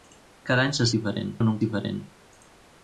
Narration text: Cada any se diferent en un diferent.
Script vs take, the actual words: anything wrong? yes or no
no